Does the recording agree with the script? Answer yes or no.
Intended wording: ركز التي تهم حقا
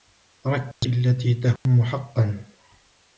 yes